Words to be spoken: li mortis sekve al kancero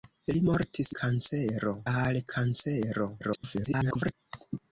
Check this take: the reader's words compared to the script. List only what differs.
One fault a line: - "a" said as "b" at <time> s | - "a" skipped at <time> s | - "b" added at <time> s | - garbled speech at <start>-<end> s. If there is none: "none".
- "sekve" said as "kancero" at 1.0 s
- garbled speech at 3.2-4.1 s